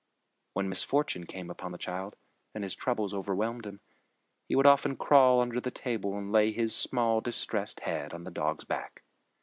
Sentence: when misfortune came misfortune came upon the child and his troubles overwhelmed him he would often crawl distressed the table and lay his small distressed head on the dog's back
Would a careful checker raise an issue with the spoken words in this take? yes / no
yes